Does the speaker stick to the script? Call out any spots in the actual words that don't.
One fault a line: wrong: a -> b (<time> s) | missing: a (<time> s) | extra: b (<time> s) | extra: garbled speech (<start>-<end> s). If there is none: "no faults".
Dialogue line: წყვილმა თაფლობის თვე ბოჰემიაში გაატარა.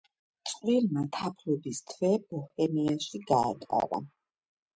no faults